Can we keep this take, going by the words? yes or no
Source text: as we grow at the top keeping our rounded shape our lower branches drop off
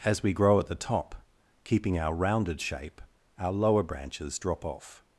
yes